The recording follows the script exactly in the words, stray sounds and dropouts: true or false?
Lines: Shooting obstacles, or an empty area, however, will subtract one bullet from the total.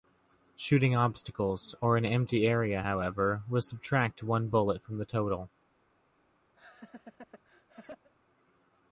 false